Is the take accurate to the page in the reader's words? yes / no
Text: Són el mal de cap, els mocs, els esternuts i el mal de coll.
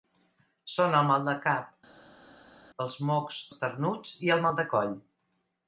no